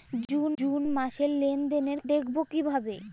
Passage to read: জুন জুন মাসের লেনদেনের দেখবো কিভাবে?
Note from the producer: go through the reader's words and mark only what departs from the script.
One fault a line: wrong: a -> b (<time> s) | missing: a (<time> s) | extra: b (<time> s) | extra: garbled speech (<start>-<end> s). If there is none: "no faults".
no faults